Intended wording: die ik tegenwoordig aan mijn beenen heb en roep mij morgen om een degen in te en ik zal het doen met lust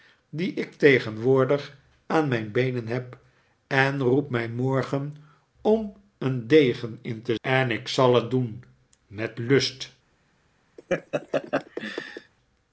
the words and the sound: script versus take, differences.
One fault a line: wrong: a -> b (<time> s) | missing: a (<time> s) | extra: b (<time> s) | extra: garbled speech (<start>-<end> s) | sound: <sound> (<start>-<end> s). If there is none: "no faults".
sound: laugh (10.8-12.3 s)